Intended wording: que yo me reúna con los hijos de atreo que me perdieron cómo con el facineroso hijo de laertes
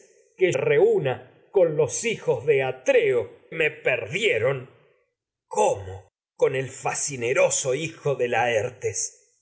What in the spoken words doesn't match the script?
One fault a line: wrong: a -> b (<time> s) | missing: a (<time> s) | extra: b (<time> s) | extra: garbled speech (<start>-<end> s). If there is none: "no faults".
missing: yo me (0.5 s)
missing: que (3.3 s)